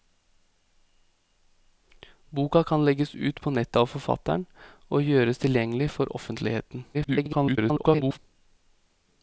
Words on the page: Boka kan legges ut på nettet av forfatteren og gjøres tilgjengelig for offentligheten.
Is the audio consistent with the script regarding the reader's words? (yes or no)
no